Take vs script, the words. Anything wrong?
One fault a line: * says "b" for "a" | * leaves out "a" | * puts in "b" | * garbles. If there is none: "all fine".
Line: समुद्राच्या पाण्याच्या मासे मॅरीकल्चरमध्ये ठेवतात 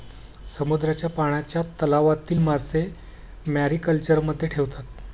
* puts in "तलावातील"